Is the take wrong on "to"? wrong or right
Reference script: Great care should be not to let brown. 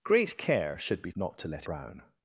right